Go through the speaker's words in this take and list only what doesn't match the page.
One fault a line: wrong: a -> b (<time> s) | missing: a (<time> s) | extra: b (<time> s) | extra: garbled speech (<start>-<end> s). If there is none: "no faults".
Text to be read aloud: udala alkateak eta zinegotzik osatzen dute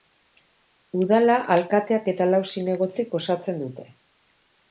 extra: lau (2.3 s)